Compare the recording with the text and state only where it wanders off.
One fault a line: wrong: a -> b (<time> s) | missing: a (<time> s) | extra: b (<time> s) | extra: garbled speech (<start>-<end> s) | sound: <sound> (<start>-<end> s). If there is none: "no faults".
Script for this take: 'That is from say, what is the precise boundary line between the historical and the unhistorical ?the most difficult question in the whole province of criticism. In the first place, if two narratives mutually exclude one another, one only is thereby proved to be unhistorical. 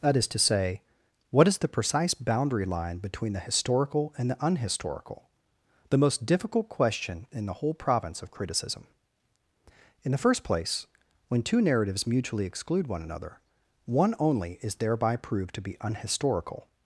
wrong: from -> to (0.3 s)
wrong: if -> when (11.3 s)